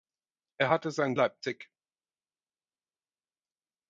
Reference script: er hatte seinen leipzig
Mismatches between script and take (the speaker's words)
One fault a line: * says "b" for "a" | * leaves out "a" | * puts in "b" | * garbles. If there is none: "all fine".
all fine